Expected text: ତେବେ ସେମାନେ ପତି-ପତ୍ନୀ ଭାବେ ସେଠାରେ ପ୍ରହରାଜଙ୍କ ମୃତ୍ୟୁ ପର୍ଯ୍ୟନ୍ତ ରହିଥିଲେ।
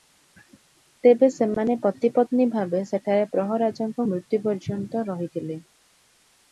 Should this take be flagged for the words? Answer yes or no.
no